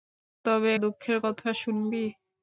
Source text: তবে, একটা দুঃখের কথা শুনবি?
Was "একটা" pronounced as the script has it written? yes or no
no